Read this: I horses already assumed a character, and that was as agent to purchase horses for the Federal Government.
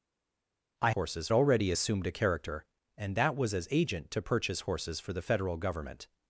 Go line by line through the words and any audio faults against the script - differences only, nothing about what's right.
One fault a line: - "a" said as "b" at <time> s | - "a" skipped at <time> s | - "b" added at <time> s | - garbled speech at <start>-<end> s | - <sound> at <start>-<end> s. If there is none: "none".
none